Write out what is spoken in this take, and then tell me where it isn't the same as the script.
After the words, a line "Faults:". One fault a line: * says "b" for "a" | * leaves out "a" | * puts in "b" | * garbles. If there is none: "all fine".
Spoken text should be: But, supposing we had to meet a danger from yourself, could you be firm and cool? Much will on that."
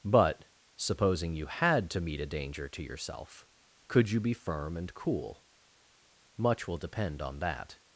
But, supposing you had to meet a danger to yourself, could you be firm and cool? Much will depend on that."
Faults:
* says "you" for "we"
* says "to" for "from"
* puts in "depend"